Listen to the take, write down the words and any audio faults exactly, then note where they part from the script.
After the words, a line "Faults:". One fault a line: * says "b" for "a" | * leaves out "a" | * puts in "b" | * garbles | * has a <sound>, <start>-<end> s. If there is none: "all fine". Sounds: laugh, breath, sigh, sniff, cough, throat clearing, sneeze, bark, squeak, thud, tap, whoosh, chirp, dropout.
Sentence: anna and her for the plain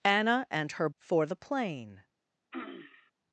anna and her for the plain
Faults:
* has a throat clearing, 2.5-3.1 s